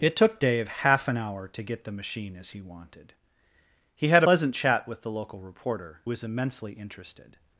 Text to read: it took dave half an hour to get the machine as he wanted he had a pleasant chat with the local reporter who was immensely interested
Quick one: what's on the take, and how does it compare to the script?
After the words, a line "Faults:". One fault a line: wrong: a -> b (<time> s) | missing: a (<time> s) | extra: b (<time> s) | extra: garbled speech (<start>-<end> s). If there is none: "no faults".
it took dave half an hour to get the machine as he wanted he had pleasant chat with the local reporter was immensely interested
Faults:
missing: a (4.2 s)
missing: who (6.0 s)